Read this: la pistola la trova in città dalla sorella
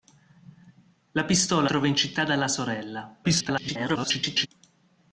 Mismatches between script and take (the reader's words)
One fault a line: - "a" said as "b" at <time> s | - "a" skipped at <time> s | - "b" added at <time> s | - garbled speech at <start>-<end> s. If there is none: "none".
- "la" skipped at 1.7 s
- garbled speech at 3.2-4.5 s